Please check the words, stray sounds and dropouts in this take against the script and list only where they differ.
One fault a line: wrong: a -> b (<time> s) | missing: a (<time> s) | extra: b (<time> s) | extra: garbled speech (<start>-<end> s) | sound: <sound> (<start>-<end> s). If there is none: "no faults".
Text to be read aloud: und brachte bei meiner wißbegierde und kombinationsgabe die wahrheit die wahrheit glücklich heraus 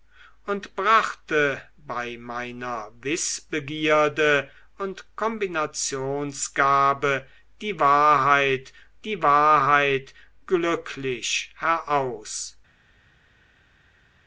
no faults